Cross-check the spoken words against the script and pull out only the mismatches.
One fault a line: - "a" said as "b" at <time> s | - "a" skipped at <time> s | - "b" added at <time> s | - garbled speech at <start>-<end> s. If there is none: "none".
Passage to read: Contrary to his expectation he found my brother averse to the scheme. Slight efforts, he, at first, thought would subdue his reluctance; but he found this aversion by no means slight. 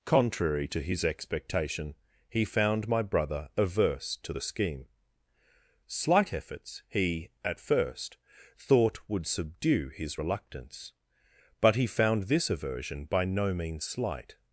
none